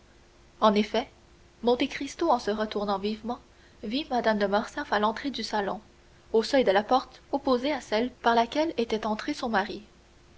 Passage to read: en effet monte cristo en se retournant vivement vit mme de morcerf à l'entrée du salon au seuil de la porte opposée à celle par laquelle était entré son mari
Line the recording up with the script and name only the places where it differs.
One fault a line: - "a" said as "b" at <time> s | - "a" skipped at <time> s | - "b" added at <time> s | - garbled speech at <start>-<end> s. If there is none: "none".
none